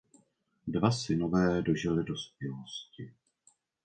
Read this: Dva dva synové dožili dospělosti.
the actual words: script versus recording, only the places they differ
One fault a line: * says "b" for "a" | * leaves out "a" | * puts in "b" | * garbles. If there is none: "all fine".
* leaves out "dva"